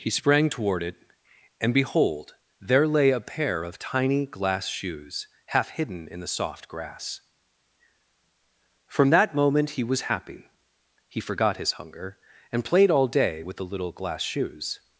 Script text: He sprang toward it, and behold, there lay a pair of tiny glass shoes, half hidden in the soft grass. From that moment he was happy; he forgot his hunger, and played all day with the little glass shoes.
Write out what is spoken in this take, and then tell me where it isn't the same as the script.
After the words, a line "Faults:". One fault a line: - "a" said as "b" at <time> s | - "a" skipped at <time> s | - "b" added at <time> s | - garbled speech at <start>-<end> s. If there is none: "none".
He sprang toward it, and behold, there lay a pair of tiny glass shoes, half hidden in the soft grass. From that moment he was happy; he forgot his hunger, and played all day with the little glass shoes.
Faults:
none